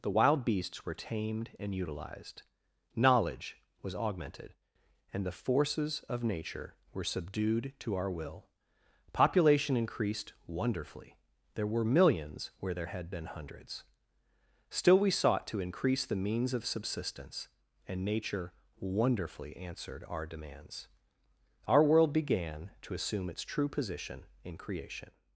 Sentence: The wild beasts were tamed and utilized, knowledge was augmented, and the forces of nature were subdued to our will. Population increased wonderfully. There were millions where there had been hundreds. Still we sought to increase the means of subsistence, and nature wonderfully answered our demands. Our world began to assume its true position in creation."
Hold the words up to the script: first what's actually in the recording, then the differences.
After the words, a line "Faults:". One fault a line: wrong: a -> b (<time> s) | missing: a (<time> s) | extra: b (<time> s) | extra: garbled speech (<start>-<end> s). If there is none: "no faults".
The wild beasts were tamed and utilized, knowledge was augmented, and the forces of nature were subdued to our will. Population increased wonderfully. There were millions where there had been hundreds. Still we sought to increase the means of subsistence, and nature wonderfully answered our demands. Our world began to assume its true position in creation."
Faults:
no faults